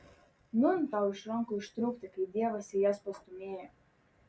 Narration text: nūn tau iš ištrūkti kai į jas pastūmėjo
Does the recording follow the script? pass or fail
fail